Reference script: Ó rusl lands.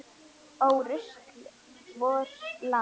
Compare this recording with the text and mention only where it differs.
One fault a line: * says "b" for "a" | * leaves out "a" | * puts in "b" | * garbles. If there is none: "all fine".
* puts in "vors"